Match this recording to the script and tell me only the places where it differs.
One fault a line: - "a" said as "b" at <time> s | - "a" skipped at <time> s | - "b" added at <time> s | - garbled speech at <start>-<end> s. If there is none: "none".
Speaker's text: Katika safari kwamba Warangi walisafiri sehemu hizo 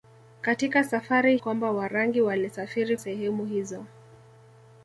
none